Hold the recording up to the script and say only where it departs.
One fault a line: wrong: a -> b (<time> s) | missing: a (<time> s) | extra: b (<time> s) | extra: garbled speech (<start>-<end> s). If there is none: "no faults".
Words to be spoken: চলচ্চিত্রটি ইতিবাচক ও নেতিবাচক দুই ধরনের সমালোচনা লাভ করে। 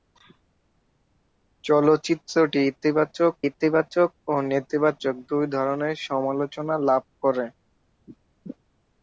extra: ইতিবাচক (3.5 s)